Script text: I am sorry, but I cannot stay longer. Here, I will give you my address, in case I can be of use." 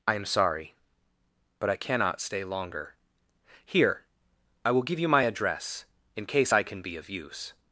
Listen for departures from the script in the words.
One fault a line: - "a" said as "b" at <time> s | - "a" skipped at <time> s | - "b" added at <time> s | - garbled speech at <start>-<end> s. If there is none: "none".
none